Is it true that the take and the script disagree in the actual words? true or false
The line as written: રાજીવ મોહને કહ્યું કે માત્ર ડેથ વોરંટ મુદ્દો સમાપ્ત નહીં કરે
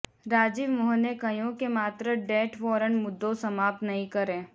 false